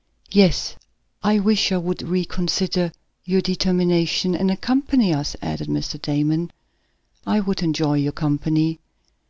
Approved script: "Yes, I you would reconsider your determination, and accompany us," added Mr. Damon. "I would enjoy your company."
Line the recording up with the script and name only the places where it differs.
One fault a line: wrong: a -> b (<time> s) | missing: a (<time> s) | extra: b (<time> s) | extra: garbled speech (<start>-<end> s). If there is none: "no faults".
extra: wish (1.4 s)